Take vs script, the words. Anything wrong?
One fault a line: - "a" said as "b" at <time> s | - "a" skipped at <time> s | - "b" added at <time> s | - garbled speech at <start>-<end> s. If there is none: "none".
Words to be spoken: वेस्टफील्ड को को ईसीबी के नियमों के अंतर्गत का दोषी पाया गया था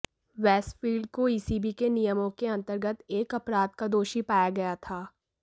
- "को" skipped at 1.3 s
- "एक अपराध" added at 3.1 s